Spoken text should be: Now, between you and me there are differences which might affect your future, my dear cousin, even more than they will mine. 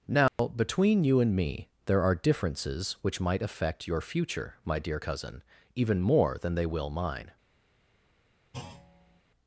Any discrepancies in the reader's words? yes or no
no